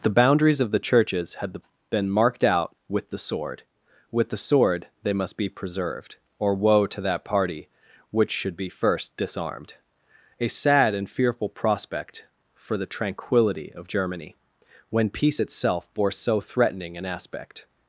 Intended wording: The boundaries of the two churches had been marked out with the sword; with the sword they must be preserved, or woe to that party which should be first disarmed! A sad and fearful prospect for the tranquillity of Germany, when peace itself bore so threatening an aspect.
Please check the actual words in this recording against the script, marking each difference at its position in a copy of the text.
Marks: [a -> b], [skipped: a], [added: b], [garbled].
The boundaries of the [skipped: two] churches had been marked out with the sword; with the sword they must be preserved, or woe to that party which should be first disarmed! A sad and fearful prospect for the tranquillity of Germany, when peace itself bore so threatening an aspect.